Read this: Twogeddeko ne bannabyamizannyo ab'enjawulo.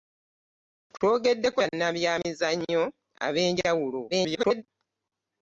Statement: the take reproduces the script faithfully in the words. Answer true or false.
false